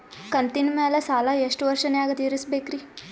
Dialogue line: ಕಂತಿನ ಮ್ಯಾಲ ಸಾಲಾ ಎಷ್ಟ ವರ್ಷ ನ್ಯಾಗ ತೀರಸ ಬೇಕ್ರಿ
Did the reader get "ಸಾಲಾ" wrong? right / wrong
right